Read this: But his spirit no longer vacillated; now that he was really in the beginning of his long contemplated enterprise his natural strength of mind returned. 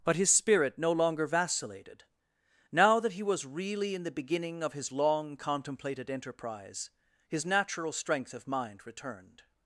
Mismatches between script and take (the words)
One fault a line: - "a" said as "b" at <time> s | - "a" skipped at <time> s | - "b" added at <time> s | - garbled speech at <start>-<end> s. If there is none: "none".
none